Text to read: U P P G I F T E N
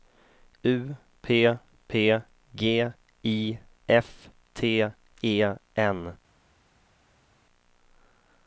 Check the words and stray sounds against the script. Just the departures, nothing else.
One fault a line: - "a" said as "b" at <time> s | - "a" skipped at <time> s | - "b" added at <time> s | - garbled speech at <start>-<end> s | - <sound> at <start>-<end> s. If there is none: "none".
none